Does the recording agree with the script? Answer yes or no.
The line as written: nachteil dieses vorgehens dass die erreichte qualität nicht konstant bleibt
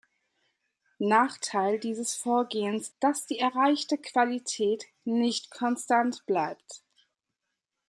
yes